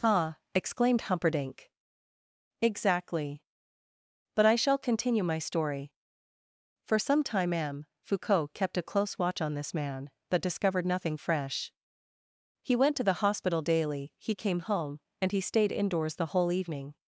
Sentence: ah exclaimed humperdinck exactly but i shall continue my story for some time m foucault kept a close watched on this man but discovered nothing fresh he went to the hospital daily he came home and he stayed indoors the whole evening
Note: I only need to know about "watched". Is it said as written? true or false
false